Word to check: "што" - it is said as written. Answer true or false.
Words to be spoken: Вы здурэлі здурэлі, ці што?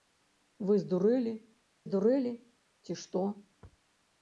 true